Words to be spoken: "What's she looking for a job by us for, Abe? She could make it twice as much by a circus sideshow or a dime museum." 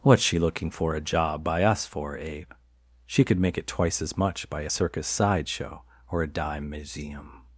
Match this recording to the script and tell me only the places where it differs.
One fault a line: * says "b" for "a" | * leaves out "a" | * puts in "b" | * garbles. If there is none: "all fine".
all fine